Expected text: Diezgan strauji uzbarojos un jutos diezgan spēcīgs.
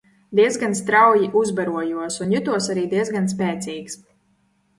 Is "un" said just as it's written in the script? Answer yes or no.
yes